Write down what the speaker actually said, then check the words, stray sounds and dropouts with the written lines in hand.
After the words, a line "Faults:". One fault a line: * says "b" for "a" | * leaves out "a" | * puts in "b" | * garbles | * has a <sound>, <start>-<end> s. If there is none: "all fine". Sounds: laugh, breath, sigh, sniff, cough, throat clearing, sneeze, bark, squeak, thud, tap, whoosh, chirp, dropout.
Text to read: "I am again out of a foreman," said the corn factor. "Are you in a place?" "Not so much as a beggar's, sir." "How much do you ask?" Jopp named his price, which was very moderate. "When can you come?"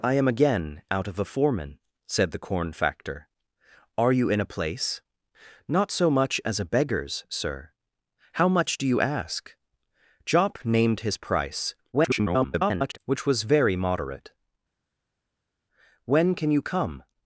"I am again out of a foreman," said the corn factor. "Are you in a place?" "Not so much as a beggar's, sir." "How much do you ask?" Jopp named his price, [garbled] which was very moderate. "When can you come?"
Faults:
* garbles